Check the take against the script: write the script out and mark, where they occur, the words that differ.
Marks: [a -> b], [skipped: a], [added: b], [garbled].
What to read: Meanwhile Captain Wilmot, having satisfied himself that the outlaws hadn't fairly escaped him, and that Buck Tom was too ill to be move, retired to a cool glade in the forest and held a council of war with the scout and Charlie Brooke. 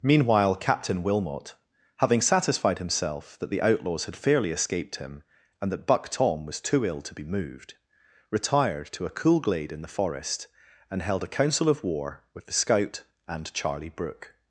Meanwhile Captain Wilmot, having satisfied himself that the outlaws [hadn't -> had] fairly escaped him, and that Buck Tom was too ill to be [move, -> moved] retired to a cool glade in the forest and held a council of war with the scout and Charlie Brooke.